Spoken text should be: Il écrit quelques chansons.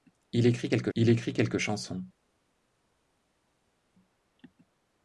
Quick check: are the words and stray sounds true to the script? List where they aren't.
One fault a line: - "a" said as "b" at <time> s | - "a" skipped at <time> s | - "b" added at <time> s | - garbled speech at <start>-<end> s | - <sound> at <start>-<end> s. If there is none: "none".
- "il écrit quelques" added at 0.9 s